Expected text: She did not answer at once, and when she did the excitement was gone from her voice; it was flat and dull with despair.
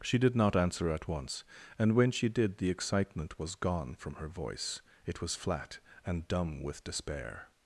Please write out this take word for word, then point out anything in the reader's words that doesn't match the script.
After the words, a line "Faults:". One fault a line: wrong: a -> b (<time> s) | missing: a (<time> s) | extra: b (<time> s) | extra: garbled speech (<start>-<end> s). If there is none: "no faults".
She did not answer at once, and when she did the excitement was gone from her voice; it was flat and dumb with despair.
Faults:
wrong: dull -> dumb (6.3 s)